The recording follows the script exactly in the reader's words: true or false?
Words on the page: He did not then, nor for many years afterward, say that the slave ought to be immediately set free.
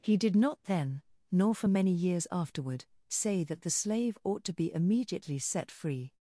true